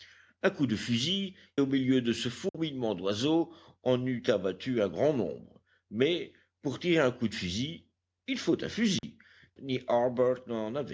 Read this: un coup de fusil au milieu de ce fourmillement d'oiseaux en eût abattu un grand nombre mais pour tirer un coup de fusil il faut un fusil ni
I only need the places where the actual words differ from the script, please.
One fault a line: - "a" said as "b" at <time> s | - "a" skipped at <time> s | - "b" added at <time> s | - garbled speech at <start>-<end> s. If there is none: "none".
none